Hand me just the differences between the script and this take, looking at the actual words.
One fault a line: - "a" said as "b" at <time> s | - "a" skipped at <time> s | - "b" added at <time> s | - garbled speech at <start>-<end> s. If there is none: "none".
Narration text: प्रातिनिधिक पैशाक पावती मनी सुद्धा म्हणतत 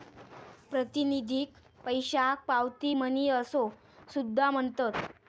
- "असो" added at 3.3 s